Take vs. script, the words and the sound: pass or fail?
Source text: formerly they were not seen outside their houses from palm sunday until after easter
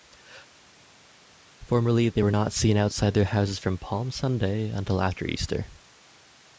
pass